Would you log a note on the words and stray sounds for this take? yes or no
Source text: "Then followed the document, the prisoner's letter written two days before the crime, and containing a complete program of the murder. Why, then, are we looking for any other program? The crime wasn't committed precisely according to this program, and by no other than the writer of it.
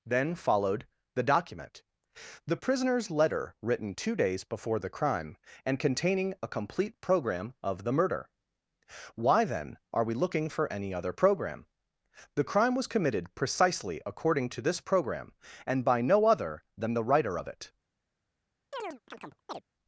yes